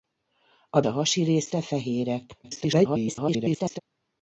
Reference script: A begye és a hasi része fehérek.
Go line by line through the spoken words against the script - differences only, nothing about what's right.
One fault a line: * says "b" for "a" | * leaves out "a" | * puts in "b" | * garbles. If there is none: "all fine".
* leaves out "begye és"
* garbles